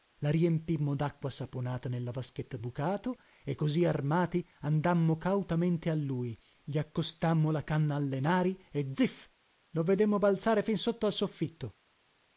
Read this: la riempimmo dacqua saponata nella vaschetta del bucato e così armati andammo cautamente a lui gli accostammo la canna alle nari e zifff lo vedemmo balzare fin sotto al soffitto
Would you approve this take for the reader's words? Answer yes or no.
no